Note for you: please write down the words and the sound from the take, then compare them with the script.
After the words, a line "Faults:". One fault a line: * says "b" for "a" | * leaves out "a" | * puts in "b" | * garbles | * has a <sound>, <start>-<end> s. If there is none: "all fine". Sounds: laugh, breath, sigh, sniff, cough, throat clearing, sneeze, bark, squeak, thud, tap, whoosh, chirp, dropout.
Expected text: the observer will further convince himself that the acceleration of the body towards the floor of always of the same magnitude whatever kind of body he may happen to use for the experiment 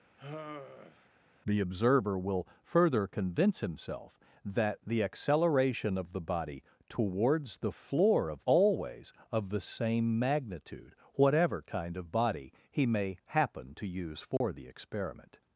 the observer will further convince himself that the acceleration of the body towards the floor of always of the same magnitude whatever kind of body he may happen to use for the experiment
Faults:
* has a sigh, 0.2-1.1 s
* has a dropout, 14.4-14.4 s